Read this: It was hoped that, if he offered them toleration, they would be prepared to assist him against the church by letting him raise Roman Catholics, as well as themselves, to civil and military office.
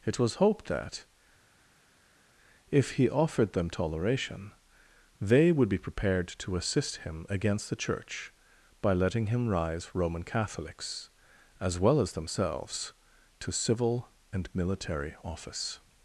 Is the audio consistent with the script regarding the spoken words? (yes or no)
no